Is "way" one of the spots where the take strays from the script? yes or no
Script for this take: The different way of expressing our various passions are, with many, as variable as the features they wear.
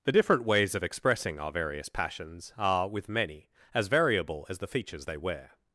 yes